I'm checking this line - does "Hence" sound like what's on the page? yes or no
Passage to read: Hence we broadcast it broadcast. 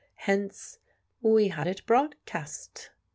yes